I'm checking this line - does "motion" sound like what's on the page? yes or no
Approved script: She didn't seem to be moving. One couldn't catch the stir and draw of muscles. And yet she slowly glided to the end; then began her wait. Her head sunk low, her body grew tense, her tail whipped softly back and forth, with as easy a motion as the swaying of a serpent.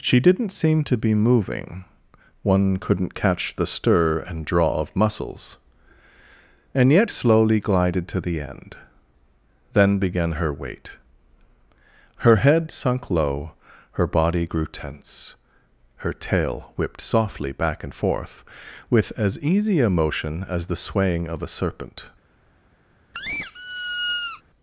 yes